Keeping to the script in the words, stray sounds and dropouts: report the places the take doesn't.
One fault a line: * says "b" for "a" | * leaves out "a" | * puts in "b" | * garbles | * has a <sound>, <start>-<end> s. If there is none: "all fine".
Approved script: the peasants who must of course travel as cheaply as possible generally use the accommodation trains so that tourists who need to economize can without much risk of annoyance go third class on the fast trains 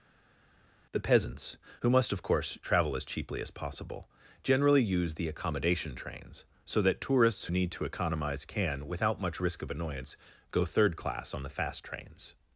* leaves out "who"